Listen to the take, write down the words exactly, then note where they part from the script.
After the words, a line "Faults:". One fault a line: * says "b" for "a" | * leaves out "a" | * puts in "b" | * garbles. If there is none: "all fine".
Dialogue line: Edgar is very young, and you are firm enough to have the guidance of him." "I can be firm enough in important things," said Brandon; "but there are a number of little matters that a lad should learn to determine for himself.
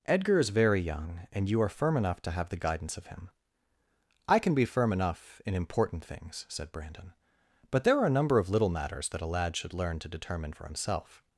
Edgar is very young, and you are firm enough to have the guidance of him." "I can be firm enough in important things," said Brandon; "but there are a number of little matters that a lad should learn to determine for himself.
Faults:
all fine